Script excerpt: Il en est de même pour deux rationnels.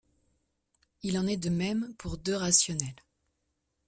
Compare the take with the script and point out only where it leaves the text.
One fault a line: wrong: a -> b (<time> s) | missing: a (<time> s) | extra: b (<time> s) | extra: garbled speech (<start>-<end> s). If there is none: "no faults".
no faults